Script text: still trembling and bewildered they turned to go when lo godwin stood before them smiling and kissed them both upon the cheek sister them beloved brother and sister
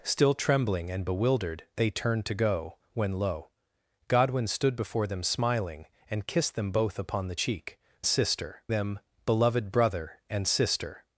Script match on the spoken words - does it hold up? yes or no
yes